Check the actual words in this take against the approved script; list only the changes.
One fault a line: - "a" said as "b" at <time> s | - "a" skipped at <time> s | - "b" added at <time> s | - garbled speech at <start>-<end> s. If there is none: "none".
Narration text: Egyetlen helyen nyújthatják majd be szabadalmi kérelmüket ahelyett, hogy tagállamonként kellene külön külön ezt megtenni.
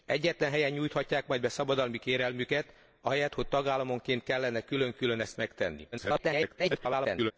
- garbled speech at 5.9-7.3 s